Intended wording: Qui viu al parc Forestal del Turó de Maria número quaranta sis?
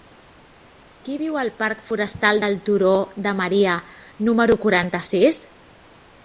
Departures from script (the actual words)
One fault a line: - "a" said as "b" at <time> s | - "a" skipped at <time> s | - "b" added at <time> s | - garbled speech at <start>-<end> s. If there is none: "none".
none